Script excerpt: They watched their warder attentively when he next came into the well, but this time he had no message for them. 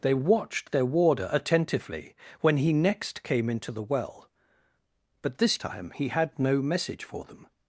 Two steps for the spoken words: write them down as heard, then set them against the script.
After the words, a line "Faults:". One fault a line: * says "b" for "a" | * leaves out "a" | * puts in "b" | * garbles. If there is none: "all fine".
They watched their warder attentively when he next came into the well, but this time he had no message for them.
Faults:
all fine